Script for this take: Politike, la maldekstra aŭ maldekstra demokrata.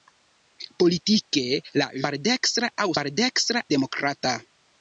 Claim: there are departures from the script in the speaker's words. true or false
false